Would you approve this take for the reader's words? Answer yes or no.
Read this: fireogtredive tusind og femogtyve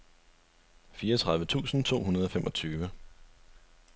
no